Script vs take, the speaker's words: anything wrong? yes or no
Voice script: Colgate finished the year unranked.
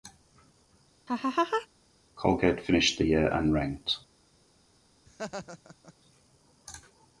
no